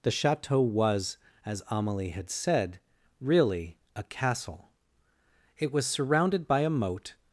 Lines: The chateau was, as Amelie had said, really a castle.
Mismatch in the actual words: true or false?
true